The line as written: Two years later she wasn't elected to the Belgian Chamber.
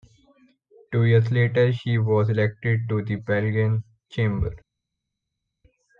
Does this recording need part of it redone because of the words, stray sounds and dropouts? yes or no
yes